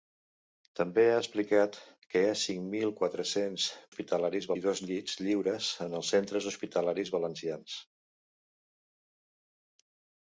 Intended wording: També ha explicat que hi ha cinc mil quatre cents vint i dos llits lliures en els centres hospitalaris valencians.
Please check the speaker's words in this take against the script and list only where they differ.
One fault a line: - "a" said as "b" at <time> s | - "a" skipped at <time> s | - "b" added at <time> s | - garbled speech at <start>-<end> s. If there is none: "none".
- "vint" said as "hospitalaris" at 3.9 s